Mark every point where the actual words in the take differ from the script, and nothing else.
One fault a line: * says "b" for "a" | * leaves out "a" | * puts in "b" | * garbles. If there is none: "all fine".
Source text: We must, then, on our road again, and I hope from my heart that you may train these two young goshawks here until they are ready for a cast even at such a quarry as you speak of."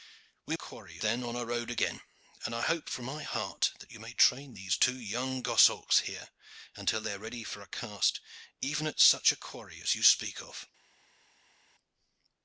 * says "quarry" for "must"